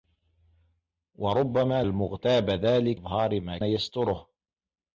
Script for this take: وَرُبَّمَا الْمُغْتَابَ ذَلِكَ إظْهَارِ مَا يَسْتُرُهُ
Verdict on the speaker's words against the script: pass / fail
pass